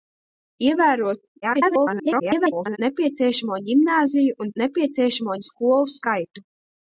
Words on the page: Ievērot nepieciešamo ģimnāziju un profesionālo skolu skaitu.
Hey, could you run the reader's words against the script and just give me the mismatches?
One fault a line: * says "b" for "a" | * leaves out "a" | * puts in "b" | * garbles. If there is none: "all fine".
* garbles
* says "nepieciešamo" for "profesionālo"